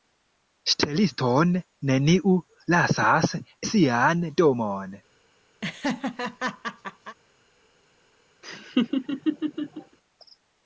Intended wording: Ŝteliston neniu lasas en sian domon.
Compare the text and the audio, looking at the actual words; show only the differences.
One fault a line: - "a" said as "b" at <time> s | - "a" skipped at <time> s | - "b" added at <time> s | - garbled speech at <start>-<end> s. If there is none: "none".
- "en" skipped at 3.4 s